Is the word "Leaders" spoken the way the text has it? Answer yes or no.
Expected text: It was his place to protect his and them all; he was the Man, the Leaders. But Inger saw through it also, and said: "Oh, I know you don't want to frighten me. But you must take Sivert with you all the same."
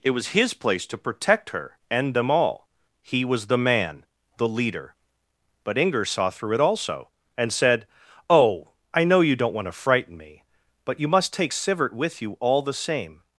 no